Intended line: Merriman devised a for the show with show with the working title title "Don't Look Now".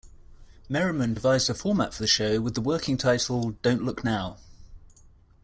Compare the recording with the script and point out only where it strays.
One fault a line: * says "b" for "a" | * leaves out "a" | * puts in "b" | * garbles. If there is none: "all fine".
* puts in "format"
* leaves out "show with"
* leaves out "title"